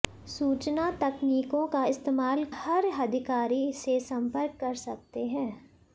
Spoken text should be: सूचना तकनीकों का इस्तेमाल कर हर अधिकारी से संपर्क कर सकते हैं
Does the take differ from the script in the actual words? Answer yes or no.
yes